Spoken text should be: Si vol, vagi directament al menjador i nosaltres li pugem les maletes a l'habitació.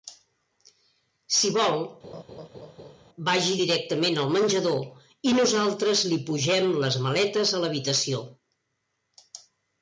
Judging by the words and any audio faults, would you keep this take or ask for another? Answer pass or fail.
fail